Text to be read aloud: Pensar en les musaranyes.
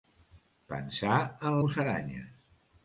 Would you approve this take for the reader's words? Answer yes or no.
no